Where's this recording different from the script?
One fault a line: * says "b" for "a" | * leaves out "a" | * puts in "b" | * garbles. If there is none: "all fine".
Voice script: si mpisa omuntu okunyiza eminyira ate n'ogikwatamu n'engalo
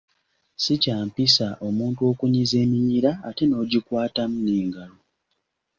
* puts in "kya"